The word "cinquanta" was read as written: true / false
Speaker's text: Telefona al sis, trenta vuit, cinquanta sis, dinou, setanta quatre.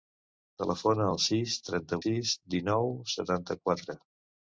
false